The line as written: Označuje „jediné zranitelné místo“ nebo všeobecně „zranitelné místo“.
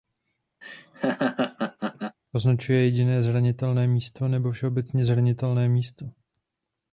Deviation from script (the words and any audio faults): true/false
true